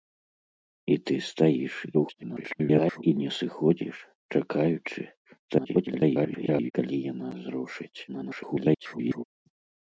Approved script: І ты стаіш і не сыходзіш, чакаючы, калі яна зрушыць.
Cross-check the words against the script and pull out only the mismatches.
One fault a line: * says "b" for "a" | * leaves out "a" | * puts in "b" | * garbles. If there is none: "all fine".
* garbles
* garbles
* garbles